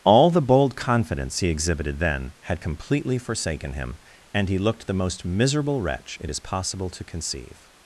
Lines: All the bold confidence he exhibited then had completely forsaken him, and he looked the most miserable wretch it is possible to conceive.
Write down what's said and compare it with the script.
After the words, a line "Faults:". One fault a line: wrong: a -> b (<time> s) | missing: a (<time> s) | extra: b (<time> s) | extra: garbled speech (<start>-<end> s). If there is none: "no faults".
All the bold confidence he exhibited then had completely forsaken him, and he looked the most miserable wretch it is possible to conceive.
Faults:
no faults